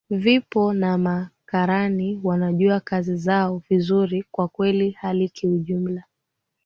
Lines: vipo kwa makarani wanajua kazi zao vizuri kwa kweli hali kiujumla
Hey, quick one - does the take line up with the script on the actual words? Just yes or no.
no